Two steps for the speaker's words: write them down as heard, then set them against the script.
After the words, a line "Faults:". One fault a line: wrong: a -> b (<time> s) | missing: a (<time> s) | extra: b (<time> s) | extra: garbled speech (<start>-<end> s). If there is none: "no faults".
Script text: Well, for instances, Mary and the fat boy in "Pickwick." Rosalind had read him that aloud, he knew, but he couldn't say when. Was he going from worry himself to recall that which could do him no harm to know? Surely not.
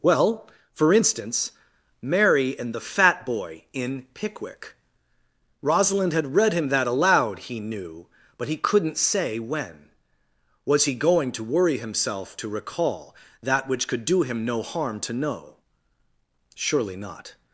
Well, for instance, Mary and the fat boy in "Pickwick." Rosalind had read him that aloud, he knew, but he couldn't say when. Was he going to worry himself to recall that which could do him no harm to know? Surely not.
Faults:
wrong: instances -> instance (0.9 s)
wrong: from -> to (11.3 s)